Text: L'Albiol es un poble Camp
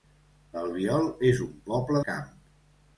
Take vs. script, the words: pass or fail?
pass